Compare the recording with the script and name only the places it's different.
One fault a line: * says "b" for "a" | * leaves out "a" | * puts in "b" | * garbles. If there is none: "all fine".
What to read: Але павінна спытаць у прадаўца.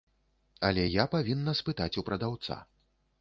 * puts in "я"